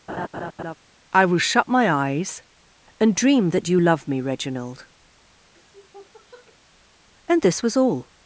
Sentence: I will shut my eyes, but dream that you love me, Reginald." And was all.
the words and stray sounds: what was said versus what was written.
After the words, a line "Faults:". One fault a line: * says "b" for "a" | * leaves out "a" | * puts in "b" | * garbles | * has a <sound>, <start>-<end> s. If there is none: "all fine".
I will shut my eyes, and dream that you love me, Reginald." And this was all.
Faults:
* has a laugh, 0.1-0.8 s
* says "and" for "but"
* has a sniff, 5.5-6.6 s
* puts in "this"